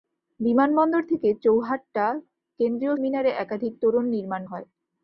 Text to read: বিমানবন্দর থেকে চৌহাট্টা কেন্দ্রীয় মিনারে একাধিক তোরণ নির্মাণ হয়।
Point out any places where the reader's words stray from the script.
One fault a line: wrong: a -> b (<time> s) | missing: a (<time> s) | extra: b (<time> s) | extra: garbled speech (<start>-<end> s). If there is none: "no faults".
no faults